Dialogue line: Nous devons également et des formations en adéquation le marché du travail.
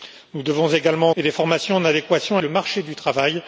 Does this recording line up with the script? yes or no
yes